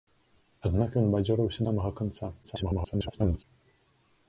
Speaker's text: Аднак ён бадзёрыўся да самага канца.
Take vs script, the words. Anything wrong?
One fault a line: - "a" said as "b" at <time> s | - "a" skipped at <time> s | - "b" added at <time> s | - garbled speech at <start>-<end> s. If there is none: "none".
- "да" skipped at 1.6 s
- garbled speech at 2.4-3.4 s